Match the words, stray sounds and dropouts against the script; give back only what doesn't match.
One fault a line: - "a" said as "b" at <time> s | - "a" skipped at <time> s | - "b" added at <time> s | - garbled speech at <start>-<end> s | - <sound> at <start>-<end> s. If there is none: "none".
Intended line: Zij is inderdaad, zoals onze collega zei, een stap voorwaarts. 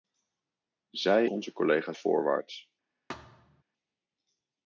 - "is inderdaad zoals" skipped at 1.3 s
- "zei een stap" skipped at 1.9 s
- thud at 3.1-3.6 s